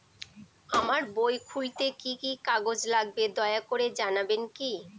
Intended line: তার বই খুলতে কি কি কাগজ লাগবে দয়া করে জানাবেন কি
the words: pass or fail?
fail